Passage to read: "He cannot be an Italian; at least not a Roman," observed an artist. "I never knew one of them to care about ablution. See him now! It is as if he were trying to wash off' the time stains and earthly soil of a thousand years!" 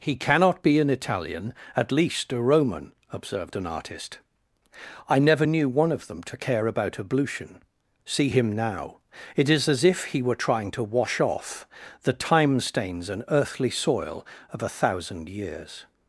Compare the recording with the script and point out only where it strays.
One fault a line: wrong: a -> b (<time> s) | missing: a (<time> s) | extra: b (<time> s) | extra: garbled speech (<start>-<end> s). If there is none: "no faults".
missing: not (2.3 s)